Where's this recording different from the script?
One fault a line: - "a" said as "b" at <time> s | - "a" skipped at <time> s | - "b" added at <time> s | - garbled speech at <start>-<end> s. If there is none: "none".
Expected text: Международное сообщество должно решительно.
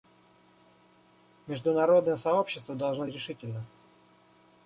none